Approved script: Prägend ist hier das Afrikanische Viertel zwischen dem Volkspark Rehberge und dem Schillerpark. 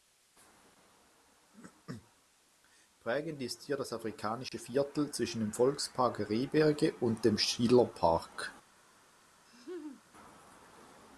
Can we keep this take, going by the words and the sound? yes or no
no